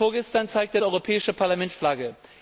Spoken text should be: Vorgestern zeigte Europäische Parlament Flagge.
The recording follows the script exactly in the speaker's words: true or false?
true